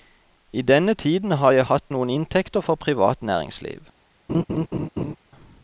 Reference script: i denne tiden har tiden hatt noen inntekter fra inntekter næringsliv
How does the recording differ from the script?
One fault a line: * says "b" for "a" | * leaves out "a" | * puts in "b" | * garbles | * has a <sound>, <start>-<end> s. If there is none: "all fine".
* says "jeg" for "tiden"
* says "privat" for "inntekter"
* has a laugh, 4.3-5.2 s